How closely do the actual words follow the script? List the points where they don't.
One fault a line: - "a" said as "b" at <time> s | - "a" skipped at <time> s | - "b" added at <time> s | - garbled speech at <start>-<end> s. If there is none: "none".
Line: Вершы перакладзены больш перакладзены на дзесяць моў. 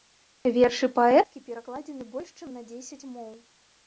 - "паэткі" added at 0.9 s
- "перакладзены" said as "чым" at 2.4 s